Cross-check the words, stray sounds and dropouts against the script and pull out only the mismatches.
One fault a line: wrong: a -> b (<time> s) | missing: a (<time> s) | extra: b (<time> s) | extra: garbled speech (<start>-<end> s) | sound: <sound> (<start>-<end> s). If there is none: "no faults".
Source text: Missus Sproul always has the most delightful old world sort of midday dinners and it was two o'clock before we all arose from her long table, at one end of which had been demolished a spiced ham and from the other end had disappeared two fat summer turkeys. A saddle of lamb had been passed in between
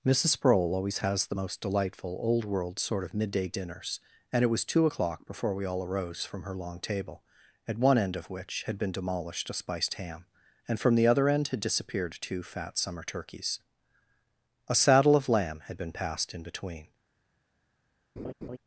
sound: laugh (18.2-18.6 s)